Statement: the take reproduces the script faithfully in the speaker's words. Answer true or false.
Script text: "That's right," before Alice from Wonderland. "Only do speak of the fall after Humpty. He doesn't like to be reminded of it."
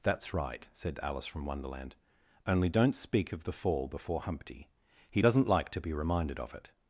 false